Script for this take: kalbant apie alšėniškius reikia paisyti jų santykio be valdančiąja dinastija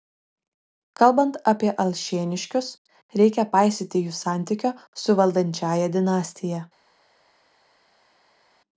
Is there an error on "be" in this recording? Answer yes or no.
yes